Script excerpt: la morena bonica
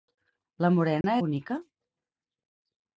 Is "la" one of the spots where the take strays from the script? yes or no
no